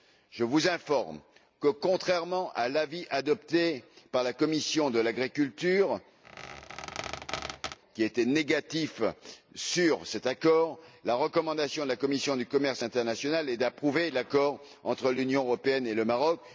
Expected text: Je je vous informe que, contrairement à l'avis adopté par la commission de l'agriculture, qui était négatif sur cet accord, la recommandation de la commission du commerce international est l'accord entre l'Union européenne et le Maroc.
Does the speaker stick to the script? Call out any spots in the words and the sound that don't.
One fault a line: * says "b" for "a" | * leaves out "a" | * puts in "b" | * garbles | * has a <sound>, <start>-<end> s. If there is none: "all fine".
* leaves out "je"
* has a squeak, 6.2-7.8 s
* puts in "d'approuver"